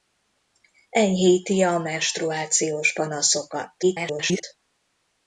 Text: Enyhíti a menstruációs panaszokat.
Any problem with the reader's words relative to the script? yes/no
yes